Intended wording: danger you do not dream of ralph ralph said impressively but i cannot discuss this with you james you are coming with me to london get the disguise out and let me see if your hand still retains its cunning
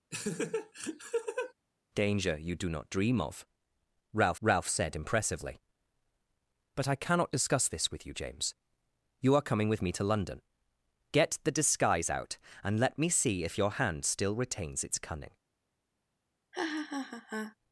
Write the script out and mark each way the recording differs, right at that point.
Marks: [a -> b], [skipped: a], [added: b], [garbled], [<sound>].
[laugh] danger you do not dream of ralph ralph said impressively but i cannot discuss this with you james you are coming with me to london get the disguise out and let me see if your hand still retains its cunning [laugh]